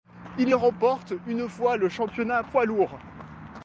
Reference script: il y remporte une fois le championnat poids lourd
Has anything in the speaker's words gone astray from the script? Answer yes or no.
no